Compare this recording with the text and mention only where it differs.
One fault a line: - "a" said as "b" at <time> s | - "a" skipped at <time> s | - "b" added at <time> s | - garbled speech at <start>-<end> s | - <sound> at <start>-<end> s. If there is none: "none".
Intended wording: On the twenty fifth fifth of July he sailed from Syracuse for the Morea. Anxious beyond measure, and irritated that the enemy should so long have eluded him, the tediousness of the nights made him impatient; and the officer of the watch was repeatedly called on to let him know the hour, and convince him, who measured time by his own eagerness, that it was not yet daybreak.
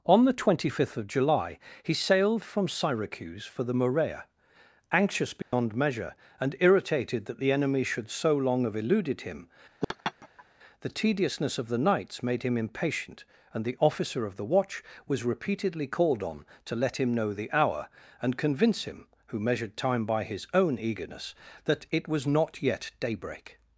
- "fifth" skipped at 1.0 s
- dropout at 5.4-5.5 s
- laugh at 9.8-10.4 s